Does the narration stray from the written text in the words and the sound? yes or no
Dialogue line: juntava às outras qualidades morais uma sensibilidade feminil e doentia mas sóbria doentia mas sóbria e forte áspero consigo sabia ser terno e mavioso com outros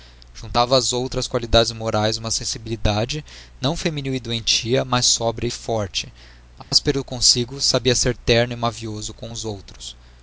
yes